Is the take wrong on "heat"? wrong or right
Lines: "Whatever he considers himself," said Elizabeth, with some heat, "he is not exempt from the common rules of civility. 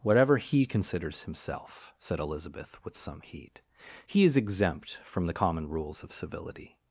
right